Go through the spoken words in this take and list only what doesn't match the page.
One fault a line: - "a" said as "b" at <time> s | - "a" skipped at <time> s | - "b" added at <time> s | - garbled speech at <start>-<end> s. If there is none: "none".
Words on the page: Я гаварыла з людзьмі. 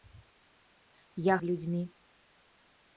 - "гаварыла" skipped at 1.4 s